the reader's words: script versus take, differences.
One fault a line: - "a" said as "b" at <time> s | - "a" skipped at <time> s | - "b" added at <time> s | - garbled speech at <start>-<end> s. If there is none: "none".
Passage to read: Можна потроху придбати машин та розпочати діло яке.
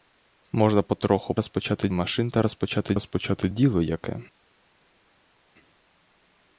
- "придбати" said as "розпочати" at 1.4 s
- "розпочати" added at 2.9 s